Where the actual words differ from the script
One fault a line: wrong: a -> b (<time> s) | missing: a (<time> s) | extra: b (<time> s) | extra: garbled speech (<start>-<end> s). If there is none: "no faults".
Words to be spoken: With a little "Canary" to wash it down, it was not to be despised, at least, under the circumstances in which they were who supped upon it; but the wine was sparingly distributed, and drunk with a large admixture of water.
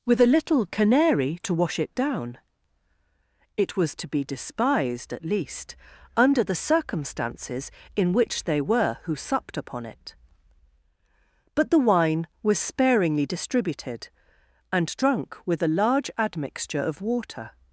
missing: not (4.0 s)